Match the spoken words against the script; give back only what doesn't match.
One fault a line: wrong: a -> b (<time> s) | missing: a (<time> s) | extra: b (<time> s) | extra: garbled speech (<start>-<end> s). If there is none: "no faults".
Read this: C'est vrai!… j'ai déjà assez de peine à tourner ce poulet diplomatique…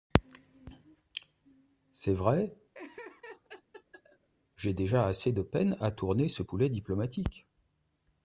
no faults